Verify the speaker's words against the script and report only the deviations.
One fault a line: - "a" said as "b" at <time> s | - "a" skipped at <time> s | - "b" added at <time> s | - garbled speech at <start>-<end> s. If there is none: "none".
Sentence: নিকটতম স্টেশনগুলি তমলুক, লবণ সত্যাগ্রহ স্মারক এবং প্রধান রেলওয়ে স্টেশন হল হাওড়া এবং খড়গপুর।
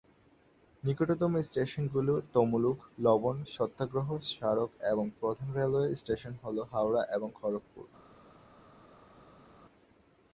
none